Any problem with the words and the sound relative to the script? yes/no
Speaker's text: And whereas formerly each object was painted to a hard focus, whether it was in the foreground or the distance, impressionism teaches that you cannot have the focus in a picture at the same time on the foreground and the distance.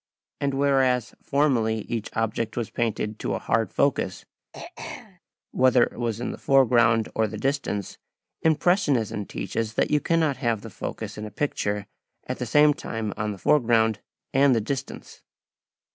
yes